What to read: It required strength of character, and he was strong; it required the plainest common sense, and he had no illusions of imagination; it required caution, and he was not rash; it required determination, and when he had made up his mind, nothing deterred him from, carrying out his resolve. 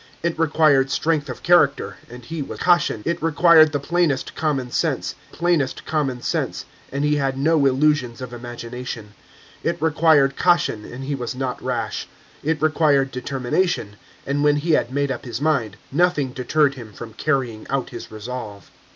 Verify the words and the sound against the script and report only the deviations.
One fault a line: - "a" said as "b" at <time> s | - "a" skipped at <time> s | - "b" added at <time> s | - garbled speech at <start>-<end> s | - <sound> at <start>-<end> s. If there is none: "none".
- "strong" said as "caution" at 2.6 s
- "plainest common sense" added at 5.3 s